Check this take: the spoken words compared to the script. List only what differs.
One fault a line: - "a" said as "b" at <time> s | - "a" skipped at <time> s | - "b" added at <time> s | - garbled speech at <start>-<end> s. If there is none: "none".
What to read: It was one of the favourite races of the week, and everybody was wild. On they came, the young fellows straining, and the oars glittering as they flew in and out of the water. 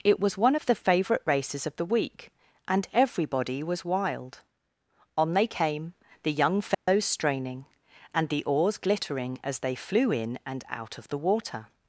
none